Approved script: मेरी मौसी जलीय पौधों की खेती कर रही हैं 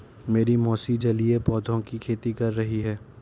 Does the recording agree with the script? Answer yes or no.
yes